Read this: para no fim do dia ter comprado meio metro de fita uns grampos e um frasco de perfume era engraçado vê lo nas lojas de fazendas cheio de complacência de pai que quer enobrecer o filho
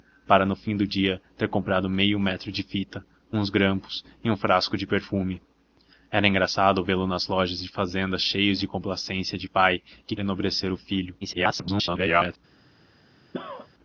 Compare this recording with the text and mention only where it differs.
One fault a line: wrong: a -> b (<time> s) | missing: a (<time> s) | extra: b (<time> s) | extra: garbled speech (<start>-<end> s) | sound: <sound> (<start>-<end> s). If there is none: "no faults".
missing: quer (10.2 s)
extra: garbled speech (11.2-12.4 s)
sound: cough (13.3-13.7 s)